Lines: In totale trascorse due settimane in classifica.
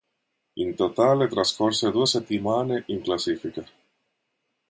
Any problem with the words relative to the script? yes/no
no